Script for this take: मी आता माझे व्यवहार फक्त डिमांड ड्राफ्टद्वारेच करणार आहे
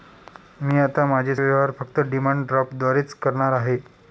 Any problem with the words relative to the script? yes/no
no